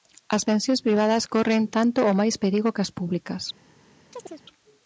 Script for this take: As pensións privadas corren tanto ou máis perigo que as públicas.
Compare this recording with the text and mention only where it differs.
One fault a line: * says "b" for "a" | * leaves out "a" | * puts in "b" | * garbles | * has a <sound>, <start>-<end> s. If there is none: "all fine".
* has a chirp, 4.1-4.4 s